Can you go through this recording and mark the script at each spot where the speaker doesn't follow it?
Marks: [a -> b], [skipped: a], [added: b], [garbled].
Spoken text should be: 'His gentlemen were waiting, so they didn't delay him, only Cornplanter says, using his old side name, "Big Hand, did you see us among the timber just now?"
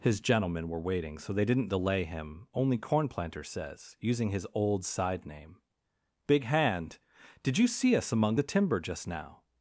'His gentlemen were waiting, so they didn't delay him, only Cornplanter says, using his old side name, "Big Hand, did you see us among the timber just now?"